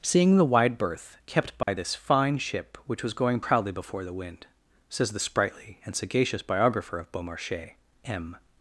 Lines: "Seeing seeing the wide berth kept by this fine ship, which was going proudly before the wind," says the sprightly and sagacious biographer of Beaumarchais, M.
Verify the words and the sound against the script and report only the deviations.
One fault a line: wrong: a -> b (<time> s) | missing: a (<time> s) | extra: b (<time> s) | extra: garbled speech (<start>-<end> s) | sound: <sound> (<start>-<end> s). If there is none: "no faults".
missing: seeing (0.4 s)
sound: dropout (1.6-1.7 s)